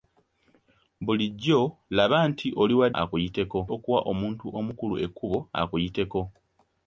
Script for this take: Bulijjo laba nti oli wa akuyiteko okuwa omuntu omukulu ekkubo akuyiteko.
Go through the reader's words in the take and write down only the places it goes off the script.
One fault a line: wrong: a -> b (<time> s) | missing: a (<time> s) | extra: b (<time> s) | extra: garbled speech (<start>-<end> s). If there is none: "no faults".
no faults